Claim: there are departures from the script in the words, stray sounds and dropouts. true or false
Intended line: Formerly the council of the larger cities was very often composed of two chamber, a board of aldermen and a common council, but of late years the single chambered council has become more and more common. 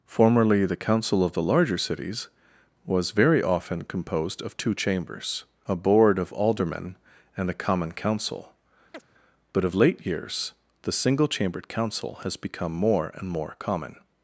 true